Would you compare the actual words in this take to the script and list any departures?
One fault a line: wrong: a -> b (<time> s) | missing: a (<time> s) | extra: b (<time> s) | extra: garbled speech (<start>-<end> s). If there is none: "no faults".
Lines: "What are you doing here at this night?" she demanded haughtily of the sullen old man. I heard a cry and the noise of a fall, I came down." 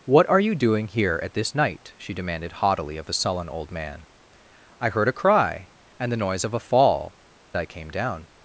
no faults